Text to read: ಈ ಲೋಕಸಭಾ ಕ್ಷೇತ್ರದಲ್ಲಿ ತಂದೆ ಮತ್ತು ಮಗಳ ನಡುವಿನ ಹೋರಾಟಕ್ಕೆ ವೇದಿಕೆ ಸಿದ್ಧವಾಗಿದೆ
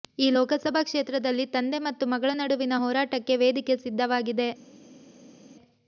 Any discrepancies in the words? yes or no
no